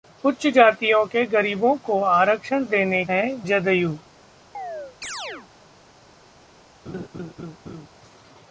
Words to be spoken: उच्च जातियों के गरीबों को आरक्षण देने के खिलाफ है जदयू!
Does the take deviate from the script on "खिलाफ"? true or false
true